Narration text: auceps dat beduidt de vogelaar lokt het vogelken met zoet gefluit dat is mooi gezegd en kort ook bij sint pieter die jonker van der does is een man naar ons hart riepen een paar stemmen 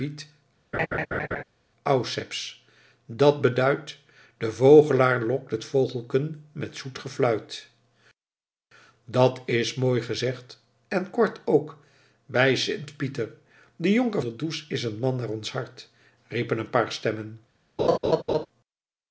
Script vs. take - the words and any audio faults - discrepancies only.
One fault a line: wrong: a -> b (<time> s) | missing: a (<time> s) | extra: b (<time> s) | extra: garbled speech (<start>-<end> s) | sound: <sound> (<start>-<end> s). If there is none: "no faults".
sound: laugh (0.7-1.4 s)
missing: van (14.2 s)
sound: laugh (17.8-18.5 s)